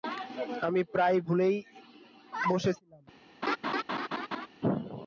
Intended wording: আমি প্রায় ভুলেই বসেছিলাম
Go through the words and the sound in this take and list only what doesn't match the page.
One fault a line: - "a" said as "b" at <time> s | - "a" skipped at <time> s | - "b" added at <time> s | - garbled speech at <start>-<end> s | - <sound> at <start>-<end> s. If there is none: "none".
- laugh at 3.4-4.5 s